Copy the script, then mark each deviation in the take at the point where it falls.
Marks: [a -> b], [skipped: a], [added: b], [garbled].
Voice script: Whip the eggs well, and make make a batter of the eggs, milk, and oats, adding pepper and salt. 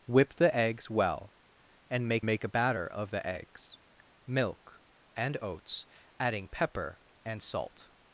Whip the eggs well, and make make a batter of the eggs, milk, and oats, adding pepper and salt.